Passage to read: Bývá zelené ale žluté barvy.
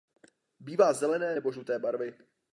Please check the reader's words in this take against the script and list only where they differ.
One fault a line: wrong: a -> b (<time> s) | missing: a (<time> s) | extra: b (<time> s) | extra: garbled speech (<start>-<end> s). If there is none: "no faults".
wrong: ale -> nebo (1.3 s)